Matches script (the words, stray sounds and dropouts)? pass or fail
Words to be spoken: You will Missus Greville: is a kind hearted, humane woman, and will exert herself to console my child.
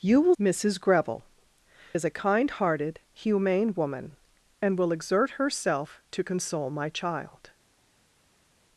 pass